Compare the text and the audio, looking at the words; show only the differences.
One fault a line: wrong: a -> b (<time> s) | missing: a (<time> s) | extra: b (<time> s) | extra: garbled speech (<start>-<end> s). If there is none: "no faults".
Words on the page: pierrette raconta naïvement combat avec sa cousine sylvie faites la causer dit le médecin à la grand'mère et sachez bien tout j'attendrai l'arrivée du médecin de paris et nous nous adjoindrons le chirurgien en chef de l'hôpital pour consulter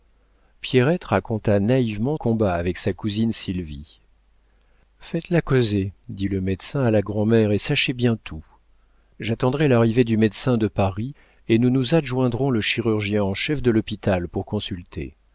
no faults